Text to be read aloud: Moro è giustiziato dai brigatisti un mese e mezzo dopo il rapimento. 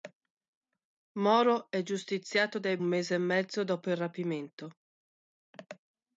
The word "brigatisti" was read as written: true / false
false